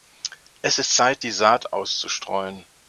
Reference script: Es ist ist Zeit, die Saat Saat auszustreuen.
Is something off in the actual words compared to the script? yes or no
yes